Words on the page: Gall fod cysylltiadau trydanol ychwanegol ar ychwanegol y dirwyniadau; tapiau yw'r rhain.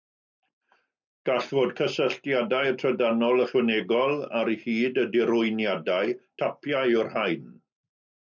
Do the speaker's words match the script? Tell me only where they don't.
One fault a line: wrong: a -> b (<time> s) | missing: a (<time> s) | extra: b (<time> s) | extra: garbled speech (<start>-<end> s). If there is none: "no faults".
wrong: ychwanegol -> hyd (4.6 s)